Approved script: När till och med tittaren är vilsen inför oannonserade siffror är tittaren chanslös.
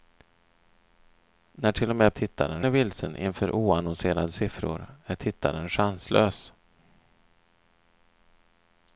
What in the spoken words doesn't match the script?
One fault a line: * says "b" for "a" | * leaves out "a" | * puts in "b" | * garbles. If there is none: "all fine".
all fine